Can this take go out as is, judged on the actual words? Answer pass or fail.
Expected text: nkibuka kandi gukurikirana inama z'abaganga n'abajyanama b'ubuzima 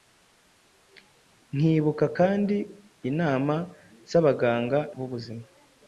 fail